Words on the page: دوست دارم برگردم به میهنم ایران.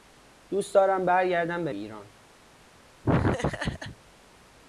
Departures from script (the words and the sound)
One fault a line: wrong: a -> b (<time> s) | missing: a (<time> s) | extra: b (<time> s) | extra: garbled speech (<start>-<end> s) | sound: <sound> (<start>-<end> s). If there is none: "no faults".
missing: میهنم (1.7 s)
sound: laugh (3.0-4.0 s)